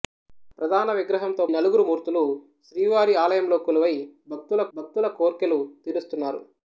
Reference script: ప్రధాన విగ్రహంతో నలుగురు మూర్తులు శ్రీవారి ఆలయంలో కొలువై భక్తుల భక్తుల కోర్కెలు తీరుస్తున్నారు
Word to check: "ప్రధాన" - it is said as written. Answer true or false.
true